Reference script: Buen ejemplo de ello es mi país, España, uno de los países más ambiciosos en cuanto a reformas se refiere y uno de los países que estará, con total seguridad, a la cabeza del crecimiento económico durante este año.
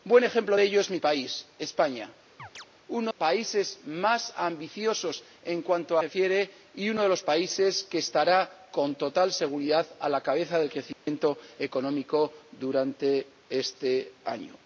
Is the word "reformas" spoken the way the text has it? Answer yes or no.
no